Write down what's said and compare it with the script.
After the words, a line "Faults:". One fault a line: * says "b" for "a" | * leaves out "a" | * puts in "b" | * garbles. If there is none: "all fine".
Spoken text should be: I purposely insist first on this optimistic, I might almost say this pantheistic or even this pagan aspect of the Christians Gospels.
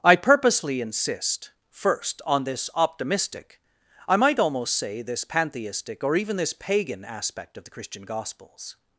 I purposely insist first on this optimistic, I might almost say this pantheistic or even this pagan aspect of the Christian Gospels.
Faults:
* says "Christian" for "Christians"